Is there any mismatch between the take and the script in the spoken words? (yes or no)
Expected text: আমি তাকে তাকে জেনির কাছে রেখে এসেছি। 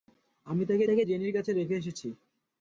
no